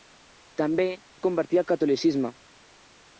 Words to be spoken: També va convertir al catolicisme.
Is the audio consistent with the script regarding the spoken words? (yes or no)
yes